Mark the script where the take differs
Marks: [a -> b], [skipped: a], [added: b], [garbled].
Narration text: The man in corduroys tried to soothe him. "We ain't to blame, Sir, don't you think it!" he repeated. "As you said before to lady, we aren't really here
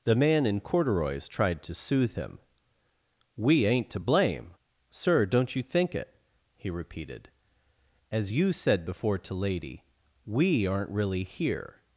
The man in corduroys tried to soothe him. "We ain't to blame, Sir, don't you think it!" he repeated. "As you said before to lady, we aren't really here